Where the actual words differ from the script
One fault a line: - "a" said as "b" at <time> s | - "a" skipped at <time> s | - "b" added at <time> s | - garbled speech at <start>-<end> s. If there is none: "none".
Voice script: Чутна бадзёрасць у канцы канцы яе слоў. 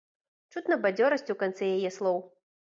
- "канцы" skipped at 1.7 s